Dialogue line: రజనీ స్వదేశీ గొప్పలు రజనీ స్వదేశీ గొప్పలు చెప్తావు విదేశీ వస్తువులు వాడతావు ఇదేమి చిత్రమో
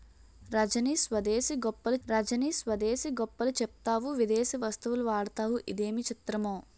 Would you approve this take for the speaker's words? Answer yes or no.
yes